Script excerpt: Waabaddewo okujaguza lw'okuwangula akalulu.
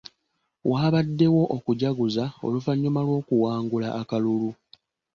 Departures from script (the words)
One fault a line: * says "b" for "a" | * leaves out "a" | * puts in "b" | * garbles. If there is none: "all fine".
* puts in "oluvannyuma"